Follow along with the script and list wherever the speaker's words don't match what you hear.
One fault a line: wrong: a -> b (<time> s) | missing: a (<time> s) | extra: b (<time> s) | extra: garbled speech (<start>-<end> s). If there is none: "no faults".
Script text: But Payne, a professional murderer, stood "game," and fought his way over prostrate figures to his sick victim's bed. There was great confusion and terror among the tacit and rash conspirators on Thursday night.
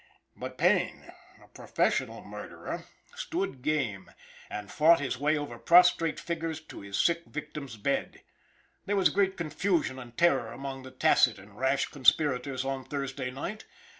no faults